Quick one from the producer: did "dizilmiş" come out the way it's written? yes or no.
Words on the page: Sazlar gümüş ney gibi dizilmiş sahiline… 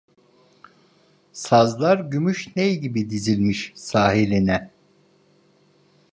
yes